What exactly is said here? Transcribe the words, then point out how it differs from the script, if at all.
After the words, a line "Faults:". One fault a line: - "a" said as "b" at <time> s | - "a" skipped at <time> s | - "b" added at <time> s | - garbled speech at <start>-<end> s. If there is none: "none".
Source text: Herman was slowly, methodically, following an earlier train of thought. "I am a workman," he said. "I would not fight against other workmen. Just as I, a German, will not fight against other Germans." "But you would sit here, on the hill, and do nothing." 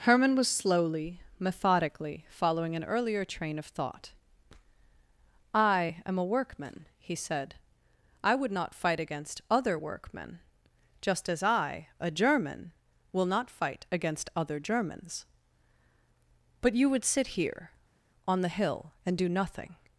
Herman was slowly, methodically, following an earlier train of thought. "I am a workman," he said. "I would not fight against other workmen. Just as I, a German, will not fight against other Germans." "But you would sit here, on the hill, and do nothing."
Faults:
none